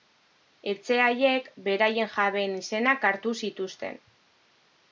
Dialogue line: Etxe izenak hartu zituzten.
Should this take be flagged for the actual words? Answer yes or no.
yes